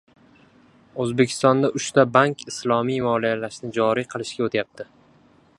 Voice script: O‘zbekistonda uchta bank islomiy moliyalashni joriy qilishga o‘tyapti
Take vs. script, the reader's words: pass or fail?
pass